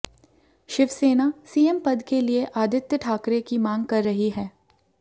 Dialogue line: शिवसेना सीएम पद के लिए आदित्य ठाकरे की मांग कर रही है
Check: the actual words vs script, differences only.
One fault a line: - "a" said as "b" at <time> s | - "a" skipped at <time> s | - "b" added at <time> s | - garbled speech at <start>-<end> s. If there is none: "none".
none